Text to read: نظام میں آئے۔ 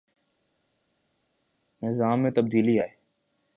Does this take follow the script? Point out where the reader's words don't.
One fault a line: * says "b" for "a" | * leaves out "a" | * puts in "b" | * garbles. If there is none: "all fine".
* puts in "تبدیلی"